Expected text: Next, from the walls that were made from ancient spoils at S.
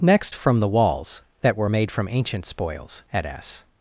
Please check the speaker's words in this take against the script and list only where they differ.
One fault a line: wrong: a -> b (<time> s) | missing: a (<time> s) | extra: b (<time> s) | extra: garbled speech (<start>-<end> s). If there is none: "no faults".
no faults